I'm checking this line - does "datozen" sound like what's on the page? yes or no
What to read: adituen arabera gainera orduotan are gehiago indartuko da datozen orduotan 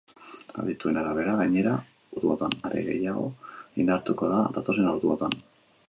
yes